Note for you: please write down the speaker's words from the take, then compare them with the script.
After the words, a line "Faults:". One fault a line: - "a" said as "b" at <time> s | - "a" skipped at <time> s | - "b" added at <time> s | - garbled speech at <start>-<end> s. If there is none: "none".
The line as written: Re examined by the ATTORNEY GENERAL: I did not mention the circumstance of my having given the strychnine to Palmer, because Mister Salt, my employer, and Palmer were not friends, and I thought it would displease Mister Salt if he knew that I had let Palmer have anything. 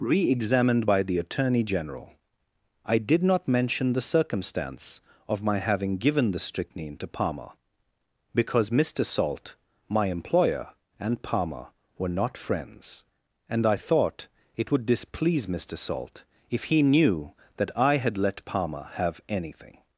Re examined by the ATTORNEY GENERAL: I did not mention the circumstance of my having given the strychnine to Palmer, because Mister Salt, my employer, and Palmer were not friends, and I thought it would displease Mister Salt if he knew that I had let Palmer have anything.
Faults:
none